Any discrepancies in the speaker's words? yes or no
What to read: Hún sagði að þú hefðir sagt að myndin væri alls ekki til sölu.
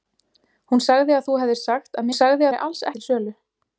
yes